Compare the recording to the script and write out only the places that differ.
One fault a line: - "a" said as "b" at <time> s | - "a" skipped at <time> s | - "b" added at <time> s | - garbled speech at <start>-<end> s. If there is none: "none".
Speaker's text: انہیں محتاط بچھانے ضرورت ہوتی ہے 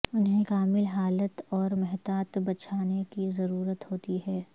- "کامل حالت اور" added at 0.4 s
- "کی" added at 3.1 s